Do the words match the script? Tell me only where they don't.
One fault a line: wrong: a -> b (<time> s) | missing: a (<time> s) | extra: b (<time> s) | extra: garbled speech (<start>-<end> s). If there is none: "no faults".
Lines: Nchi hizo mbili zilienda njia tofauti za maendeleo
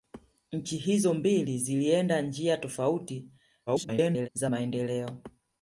extra: garbled speech (3.7-4.3 s)